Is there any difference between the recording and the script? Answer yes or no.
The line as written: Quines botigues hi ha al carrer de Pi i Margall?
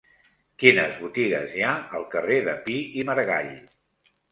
no